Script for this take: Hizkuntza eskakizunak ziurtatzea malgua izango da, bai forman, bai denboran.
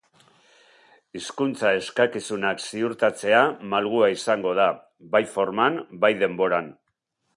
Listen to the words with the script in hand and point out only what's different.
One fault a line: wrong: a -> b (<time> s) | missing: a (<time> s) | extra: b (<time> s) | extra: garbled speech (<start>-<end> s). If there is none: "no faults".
no faults